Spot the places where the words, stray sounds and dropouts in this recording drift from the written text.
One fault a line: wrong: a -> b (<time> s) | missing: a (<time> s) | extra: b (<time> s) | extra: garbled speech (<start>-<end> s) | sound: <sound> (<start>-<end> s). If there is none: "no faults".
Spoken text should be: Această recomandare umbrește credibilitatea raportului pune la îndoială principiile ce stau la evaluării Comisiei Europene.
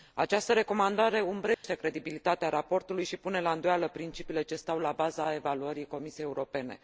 sound: dropout (1.5-1.6 s)
extra: și (3.0 s)
extra: baza (4.9 s)